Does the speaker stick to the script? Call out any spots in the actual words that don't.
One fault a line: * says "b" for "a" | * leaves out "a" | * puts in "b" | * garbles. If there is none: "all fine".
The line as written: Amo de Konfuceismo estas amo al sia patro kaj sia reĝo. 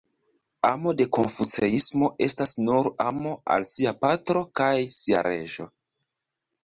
* puts in "nur"